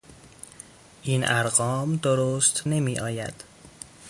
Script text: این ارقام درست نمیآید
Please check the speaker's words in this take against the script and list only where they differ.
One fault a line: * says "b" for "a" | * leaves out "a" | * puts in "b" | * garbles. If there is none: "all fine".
all fine